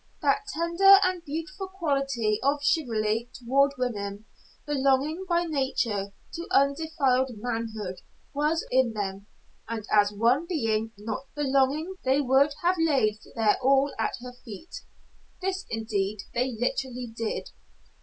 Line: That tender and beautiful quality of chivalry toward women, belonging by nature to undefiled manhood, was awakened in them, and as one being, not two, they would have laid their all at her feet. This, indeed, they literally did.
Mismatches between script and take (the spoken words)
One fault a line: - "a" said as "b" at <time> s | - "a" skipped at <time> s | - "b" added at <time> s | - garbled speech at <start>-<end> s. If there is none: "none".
- "awakened" skipped at 8.7 s
- "two" said as "belonging" at 11.3 s